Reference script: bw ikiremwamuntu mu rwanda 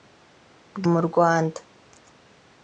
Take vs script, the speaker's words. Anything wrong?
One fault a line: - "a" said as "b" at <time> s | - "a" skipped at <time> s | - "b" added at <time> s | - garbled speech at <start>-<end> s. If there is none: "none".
- "ikiremwamuntu" skipped at 0.8 s